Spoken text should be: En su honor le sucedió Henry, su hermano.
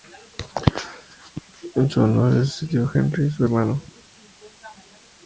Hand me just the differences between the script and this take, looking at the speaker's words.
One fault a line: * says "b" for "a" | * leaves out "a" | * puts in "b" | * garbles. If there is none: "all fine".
all fine